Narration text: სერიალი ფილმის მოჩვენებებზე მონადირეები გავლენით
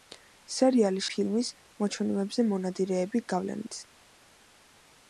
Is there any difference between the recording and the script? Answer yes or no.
no